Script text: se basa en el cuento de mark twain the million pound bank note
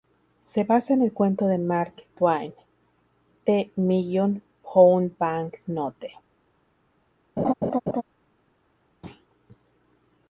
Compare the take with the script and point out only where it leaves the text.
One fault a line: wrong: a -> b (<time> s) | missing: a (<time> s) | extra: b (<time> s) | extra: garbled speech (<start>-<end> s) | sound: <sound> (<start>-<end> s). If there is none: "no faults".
sound: laugh (7.4-8.0 s)
sound: thud (9.0-9.3 s)